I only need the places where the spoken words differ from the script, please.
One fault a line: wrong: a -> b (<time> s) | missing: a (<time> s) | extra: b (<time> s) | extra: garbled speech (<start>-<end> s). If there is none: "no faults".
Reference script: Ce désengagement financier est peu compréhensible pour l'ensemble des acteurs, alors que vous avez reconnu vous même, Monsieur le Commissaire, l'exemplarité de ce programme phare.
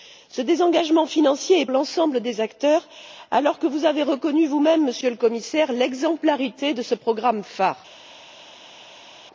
missing: peu compréhensible pour (1.6 s)